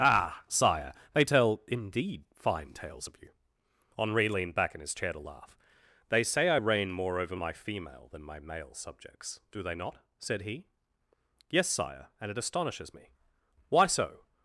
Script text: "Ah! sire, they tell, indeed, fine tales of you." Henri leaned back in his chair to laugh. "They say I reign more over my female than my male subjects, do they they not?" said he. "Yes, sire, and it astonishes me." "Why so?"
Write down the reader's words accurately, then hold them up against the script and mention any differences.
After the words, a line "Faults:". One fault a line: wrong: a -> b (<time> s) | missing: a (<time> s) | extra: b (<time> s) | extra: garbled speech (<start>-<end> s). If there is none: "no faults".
"Ah! sire, they tell, indeed, fine tales of you." Henri leaned back in his chair to laugh. "They say I reign more over my female than my male subjects, do they not?" said he. "Yes, sire, and it astonishes me." "Why so?"
Faults:
missing: they (9.7 s)